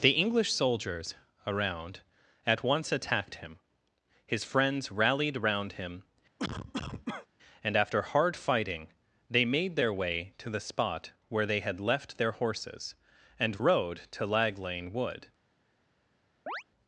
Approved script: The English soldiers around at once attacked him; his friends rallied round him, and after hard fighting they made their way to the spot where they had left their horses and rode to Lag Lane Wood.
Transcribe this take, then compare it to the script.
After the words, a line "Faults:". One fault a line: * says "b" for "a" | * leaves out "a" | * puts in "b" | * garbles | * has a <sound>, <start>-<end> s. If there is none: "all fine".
The English soldiers around at once attacked him; his friends rallied round him, and after hard fighting they made their way to the spot where they had left their horses and rode to Lag Lane Wood.
Faults:
* has a cough, 6.4-7.3 s
* has a chirp, 16.5-16.6 s